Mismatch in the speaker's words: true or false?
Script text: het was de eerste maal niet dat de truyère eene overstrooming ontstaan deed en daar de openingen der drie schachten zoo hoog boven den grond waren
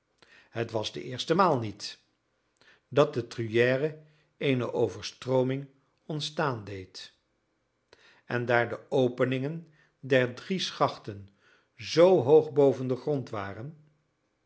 false